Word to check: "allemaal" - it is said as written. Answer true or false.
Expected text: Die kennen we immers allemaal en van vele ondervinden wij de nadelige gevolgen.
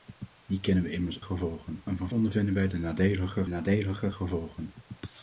false